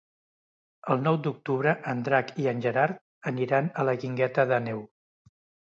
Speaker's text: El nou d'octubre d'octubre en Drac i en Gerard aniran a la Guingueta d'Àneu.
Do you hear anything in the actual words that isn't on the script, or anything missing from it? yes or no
yes